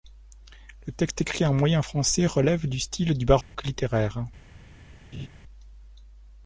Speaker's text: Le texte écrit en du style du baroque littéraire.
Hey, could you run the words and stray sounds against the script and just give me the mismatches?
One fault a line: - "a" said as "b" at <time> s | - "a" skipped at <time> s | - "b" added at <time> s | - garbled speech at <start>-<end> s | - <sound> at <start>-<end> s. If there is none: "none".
- "moyen français relève" added at 1.5 s
- dropout at 3.4-3.5 s
- laugh at 5.1-5.3 s